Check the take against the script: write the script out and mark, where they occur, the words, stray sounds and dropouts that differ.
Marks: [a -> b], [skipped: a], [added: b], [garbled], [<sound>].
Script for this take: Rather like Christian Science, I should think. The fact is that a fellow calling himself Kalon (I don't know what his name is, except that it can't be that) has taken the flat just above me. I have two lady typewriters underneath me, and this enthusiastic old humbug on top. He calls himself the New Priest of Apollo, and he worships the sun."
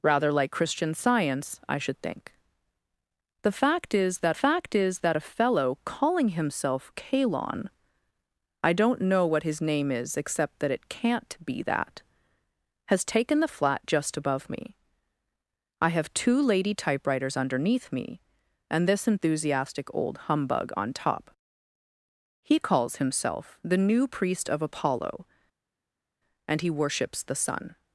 Rather like Christian Science, I should think. The fact is that [added: fact is that] a fellow calling himself Kalon (I don't know what his name is, except that it can't be that) has taken the flat just above me. I have two lady typewriters underneath me, and this enthusiastic old humbug on top. He calls himself the New Priest of Apollo, and he worships the sun."